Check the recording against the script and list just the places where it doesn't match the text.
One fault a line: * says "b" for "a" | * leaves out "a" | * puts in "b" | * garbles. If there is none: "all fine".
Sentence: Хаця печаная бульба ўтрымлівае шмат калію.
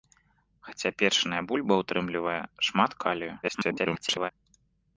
* garbles